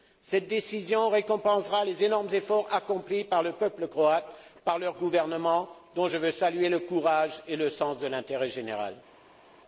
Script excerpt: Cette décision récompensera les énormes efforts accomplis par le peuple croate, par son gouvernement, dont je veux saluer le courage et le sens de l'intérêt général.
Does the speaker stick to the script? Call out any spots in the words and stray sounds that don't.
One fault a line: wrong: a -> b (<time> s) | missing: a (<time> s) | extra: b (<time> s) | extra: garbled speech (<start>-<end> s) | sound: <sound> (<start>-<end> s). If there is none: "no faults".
no faults